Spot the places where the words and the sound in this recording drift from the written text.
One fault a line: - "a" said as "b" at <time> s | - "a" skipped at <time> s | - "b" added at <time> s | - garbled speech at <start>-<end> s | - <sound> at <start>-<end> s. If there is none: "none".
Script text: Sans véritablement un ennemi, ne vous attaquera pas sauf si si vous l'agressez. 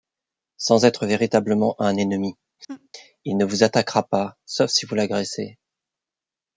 - "être" added at 0.8 s
- laugh at 2.7-2.9 s
- "il" added at 3.2 s
- "si" skipped at 4.8 s